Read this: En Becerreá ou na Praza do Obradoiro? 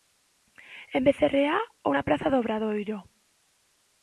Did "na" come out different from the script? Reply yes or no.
no